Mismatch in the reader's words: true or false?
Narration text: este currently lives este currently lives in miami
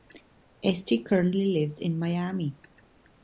true